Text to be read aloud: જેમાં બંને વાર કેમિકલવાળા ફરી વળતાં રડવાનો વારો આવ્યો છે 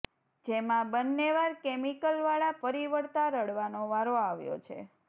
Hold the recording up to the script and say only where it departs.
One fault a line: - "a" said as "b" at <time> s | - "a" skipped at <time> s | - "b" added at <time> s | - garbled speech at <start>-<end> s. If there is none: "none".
none